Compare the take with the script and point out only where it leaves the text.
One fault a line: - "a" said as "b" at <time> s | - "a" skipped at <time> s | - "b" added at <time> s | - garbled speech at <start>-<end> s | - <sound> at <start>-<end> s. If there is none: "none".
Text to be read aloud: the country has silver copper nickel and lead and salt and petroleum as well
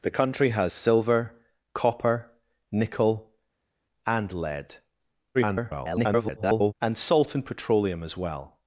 - garbled speech at 5.3-6.7 s